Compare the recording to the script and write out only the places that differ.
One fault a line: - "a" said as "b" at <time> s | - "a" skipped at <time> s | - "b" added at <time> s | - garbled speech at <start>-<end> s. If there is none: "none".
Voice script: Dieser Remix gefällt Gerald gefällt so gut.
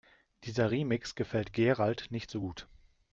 - "gefällt" said as "nicht" at 2.1 s